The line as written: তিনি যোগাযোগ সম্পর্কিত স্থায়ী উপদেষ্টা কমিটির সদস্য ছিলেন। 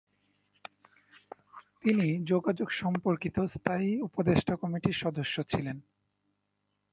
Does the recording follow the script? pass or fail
pass